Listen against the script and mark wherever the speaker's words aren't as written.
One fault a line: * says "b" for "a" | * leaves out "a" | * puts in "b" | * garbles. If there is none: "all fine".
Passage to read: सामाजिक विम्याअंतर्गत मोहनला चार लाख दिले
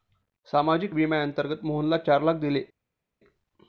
all fine